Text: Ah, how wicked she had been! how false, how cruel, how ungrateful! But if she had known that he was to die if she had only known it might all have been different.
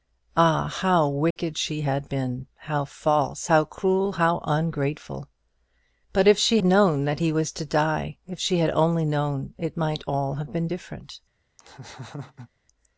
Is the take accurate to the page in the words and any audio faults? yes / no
no